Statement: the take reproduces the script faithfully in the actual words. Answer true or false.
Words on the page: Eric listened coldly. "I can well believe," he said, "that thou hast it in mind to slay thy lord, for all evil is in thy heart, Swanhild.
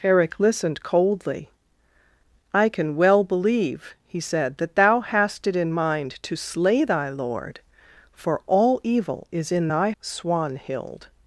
false